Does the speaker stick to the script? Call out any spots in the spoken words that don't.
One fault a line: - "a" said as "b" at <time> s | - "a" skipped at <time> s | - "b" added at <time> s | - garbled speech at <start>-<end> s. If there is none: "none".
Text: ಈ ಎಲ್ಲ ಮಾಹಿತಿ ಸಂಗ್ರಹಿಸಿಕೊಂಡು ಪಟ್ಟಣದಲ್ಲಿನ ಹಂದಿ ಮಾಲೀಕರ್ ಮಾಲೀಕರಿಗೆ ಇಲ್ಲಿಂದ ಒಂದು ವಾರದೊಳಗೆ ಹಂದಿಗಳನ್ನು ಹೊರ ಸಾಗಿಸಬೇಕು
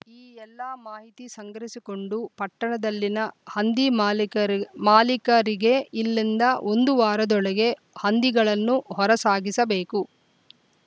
none